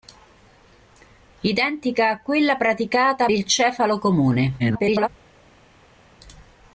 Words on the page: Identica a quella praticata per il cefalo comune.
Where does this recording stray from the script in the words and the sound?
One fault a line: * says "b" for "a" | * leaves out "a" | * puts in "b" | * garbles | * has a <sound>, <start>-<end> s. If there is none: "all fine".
* leaves out "per"
* garbles